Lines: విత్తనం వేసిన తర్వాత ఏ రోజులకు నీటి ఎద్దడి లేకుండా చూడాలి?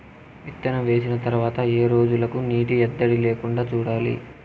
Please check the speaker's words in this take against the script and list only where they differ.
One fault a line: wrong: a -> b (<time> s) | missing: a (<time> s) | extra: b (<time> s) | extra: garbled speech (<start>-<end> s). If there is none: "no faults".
no faults